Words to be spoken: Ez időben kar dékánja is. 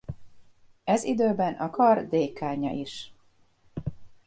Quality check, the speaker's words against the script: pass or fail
fail